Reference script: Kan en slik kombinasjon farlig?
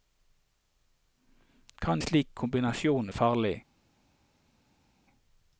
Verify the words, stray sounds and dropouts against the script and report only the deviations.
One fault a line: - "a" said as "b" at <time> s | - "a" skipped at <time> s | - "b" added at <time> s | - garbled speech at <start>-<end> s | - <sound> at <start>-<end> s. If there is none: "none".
none